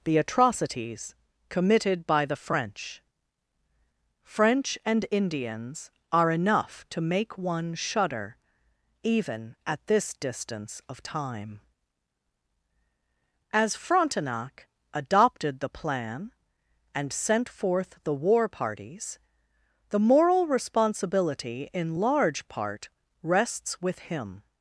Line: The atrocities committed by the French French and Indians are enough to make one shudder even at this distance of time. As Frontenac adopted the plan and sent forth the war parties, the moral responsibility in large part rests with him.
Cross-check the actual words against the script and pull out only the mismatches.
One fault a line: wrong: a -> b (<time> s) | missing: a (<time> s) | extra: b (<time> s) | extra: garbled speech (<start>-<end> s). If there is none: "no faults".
no faults